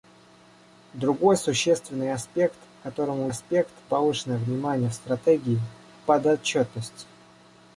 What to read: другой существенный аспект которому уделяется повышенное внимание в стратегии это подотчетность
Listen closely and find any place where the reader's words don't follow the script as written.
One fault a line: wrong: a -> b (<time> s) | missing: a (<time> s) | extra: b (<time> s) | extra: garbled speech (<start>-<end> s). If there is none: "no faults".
wrong: уделяется -> аспект (3.3 s)
missing: это (5.6 s)